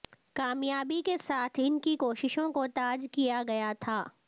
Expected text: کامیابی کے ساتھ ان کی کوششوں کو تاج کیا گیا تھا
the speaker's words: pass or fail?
pass